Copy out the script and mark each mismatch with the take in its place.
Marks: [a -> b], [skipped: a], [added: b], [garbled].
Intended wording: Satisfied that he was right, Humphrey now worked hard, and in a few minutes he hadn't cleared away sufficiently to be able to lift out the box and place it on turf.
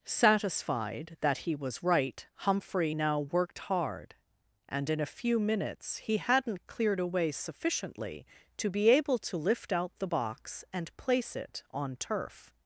Satisfied that he was right, Humphrey now worked hard, and in a few minutes he hadn't cleared away sufficiently to be able to lift out the box and place it on turf.